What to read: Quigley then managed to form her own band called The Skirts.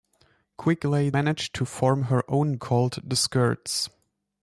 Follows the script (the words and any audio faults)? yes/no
no